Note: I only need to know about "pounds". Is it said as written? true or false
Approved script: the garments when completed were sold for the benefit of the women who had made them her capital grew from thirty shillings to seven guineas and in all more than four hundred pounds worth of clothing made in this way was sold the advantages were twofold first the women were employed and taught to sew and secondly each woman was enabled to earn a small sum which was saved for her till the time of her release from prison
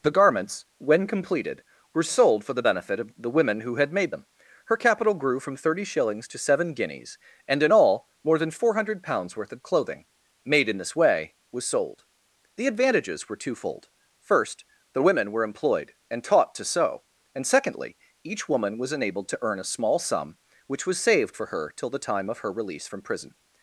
true